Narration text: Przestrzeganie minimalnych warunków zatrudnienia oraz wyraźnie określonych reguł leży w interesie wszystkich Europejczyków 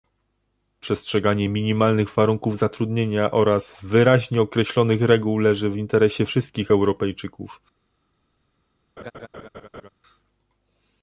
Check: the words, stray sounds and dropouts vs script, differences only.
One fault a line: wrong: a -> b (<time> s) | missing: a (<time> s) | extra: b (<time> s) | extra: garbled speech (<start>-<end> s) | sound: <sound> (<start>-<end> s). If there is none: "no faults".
sound: laugh (9.0-9.9 s)